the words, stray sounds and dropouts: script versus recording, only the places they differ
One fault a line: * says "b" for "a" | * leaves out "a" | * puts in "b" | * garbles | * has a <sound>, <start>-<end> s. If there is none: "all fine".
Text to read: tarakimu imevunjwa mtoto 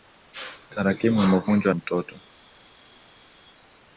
all fine